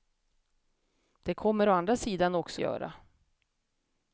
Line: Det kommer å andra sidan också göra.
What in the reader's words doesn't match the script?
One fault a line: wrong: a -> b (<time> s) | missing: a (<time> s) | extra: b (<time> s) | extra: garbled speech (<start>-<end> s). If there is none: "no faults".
no faults